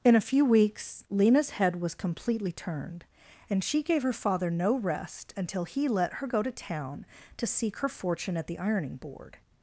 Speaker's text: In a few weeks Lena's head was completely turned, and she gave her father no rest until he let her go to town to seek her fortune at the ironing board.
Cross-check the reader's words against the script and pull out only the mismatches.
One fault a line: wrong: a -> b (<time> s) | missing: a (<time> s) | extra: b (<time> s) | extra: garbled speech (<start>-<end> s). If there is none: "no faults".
no faults